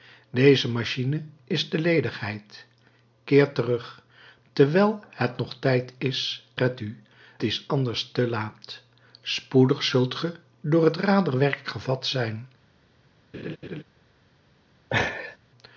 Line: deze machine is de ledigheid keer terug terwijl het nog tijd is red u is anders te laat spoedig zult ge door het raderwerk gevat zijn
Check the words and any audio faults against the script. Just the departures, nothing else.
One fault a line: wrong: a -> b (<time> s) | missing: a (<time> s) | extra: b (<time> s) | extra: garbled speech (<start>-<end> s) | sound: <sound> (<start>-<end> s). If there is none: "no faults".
sound: laugh (13.3-13.8 s)
sound: laugh (14.9-15.4 s)